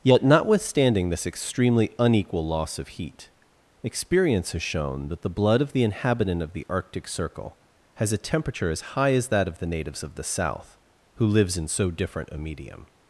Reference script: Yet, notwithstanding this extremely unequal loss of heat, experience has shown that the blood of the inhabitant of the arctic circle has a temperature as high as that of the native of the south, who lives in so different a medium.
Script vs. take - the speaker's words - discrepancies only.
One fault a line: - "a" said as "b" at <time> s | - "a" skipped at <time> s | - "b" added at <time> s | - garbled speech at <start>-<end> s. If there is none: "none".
- "native" said as "natives" at 9.7 s